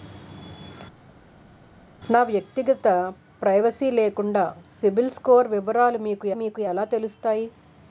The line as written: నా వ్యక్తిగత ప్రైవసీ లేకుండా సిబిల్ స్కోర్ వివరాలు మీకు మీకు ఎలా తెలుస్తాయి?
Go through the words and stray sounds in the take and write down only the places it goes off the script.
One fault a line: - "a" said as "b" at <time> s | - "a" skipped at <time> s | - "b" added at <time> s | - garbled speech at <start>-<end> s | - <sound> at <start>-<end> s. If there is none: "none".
none